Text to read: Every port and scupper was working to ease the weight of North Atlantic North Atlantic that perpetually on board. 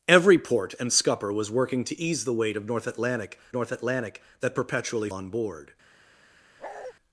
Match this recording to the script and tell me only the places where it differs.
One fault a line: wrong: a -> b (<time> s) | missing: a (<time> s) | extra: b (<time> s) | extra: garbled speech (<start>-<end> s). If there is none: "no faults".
no faults